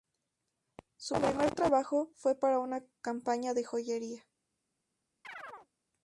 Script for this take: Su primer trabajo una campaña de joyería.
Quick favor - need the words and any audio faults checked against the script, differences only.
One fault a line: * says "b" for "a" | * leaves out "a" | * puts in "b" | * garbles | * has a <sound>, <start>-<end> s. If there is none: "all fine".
* puts in "fue para"
* has a chirp, 5.2-5.7 s